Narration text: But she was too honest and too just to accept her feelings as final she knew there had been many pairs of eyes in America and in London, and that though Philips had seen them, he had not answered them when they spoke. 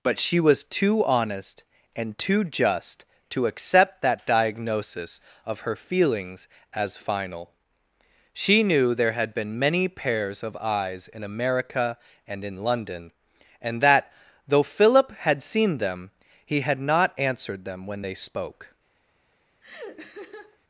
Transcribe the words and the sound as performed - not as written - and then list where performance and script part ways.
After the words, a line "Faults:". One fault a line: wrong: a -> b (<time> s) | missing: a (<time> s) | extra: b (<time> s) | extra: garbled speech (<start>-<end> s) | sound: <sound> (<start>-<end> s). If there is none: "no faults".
But she was too honest and too just to accept that diagnosis of her feelings as final she knew there had been many pairs of eyes in America and in London, and that though Philip had seen them, he had not answered them when they spoke.
Faults:
extra: that diagnosis of (4.0 s)
wrong: Philips -> Philip (14.6 s)
sound: laugh (19.6-20.6 s)